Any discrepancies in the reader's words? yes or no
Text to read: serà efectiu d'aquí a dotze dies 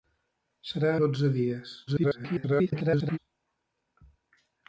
yes